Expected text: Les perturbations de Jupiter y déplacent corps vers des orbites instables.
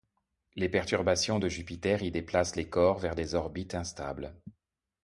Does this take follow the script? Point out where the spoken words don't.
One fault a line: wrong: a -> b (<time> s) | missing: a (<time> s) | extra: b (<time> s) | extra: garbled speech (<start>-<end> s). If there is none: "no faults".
extra: les (2.5 s)